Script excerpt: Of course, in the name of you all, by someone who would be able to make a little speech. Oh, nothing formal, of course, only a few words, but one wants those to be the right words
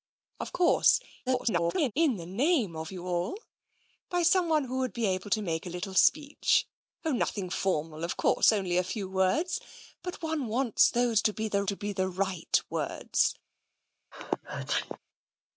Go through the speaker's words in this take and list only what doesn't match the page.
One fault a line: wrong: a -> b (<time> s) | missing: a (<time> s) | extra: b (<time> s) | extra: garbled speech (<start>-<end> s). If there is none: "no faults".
extra: garbled speech (1.3-1.9 s)
extra: to be the (11.6 s)